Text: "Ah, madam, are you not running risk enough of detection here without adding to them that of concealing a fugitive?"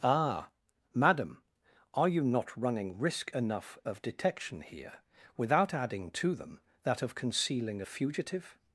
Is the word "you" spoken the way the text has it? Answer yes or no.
yes